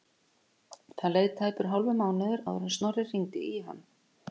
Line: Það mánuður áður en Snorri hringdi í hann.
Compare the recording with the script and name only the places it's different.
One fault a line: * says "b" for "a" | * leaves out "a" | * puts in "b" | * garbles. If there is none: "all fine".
* puts in "leið tæpur hálfur"